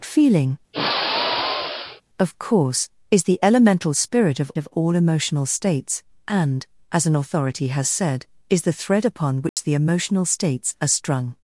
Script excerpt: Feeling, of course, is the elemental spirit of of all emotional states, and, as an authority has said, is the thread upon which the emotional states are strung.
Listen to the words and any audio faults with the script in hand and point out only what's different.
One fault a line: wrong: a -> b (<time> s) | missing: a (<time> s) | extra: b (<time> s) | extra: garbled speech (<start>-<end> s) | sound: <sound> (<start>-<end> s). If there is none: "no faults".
sound: sigh (0.7-2.0 s)
sound: dropout (9.5-9.6 s)